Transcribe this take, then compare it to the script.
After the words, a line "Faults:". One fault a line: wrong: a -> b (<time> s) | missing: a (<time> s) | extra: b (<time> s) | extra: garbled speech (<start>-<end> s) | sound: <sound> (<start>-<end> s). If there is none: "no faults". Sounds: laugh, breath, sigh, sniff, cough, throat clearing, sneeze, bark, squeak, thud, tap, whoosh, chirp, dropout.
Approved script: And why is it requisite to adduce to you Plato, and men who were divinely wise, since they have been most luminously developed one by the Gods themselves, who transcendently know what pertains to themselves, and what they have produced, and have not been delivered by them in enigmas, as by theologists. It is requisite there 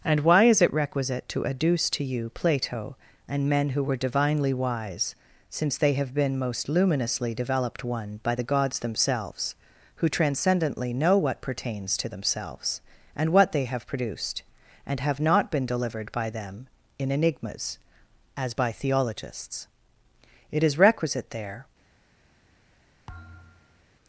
And why is it requisite to adduce to you Plato, and men who were divinely wise, since they have been most luminously developed one by the Gods themselves, who transcendently know what pertains to themselves, and what they have produced, and have not been delivered by them in enigmas, as by theologists. It is requisite there
Faults:
sound: thud (23.1-23.8 s)